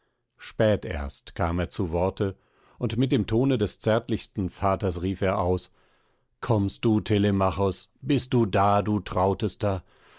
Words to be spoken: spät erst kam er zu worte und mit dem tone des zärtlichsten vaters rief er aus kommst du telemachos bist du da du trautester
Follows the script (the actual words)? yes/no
yes